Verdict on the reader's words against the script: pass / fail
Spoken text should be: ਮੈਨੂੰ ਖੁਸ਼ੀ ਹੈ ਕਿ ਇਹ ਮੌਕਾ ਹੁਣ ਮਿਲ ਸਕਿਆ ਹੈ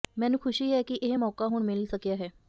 pass